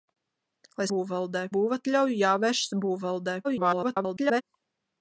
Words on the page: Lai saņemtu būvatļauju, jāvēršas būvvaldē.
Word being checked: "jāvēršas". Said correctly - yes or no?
yes